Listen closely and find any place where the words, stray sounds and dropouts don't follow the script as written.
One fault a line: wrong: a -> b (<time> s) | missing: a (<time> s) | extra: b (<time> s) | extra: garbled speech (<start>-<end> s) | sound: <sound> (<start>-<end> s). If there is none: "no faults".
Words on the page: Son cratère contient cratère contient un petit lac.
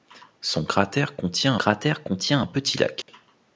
sound: dropout (3.0-3.1 s)